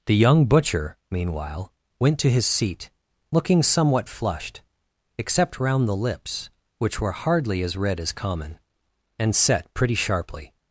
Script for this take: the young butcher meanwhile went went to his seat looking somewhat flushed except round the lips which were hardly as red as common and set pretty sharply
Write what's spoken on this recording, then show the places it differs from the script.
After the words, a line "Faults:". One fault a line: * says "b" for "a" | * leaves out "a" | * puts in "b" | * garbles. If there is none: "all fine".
the young butcher meanwhile went to his seat looking somewhat flushed except round the lips which were hardly as red as common and set pretty sharply
Faults:
* leaves out "went"